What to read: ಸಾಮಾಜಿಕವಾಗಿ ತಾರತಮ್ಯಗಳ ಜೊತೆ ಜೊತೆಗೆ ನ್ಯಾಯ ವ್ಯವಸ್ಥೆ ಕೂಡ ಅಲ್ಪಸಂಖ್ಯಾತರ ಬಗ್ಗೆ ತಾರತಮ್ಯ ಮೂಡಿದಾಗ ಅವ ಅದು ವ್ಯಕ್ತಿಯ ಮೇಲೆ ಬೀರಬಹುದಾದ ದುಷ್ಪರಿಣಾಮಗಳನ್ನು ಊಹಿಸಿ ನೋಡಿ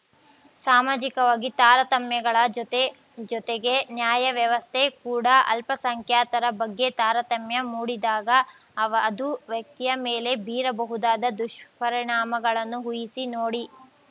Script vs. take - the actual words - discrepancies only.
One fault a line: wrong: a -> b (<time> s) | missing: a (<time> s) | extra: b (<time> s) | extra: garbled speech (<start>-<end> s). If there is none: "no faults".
no faults